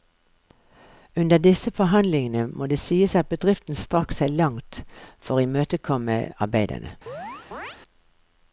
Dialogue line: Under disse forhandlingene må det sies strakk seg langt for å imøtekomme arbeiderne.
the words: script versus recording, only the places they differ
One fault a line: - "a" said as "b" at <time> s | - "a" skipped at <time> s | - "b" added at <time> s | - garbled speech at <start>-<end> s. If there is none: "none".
- "at bedriften" added at 3.1 s